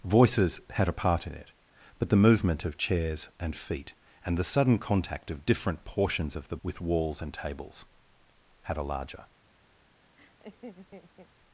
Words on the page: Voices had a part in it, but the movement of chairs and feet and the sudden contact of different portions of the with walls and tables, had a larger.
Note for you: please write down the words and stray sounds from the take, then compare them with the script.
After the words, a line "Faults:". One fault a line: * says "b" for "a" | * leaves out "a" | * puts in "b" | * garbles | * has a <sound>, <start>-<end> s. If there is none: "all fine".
Voices had a part in it, but the movement of chairs and feet and the sudden contact of different portions of the with walls and tables, had a larger.
Faults:
* has a laugh, 10.2-11.3 s